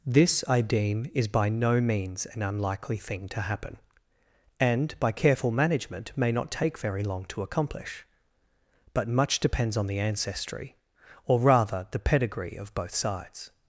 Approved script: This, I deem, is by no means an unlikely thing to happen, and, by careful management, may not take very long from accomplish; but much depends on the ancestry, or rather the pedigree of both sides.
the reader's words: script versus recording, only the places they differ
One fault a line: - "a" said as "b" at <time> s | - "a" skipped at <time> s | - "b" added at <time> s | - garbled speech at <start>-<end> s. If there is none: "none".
- "from" said as "to" at 7.3 s